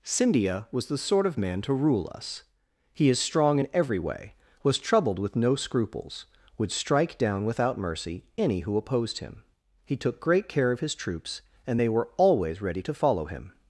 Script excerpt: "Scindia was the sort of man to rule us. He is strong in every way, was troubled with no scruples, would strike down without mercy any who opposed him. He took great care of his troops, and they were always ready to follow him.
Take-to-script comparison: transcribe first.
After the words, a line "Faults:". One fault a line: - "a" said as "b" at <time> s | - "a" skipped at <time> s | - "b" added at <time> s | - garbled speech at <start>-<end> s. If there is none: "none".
"Scindia was the sort of man to rule us. He is strong in every way, was troubled with no scruples, would strike down without mercy any who opposed him. He took great care of his troops, and they were always ready to follow him.
Faults:
none